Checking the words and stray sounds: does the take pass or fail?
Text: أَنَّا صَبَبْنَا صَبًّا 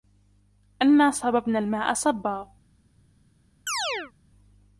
fail